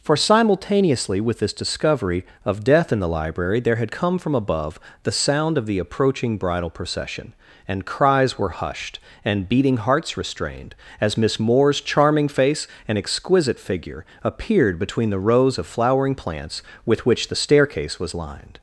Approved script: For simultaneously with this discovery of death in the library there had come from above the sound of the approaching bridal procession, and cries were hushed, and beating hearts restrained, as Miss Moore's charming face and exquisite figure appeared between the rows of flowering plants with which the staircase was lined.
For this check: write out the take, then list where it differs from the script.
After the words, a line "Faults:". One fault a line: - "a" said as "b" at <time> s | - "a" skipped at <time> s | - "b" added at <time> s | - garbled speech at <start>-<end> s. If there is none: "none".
For simultaneously with this discovery of death in the library there had come from above the sound of the approaching bridal procession, and cries were hushed, and beating hearts restrained, as Miss Moore's charming face and exquisite figure appeared between the rows of flowering plants with which the staircase was lined.
Faults:
none